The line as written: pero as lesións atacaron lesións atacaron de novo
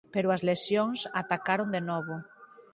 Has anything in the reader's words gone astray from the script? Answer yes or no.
yes